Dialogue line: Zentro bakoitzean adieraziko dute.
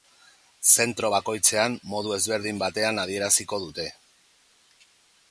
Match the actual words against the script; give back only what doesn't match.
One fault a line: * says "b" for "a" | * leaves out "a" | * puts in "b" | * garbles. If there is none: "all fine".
* puts in "modu ezberdin batean"